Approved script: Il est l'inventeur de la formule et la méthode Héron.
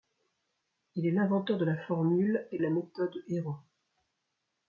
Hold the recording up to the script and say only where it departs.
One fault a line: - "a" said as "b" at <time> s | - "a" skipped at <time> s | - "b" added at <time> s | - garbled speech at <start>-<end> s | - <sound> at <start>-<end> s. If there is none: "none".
none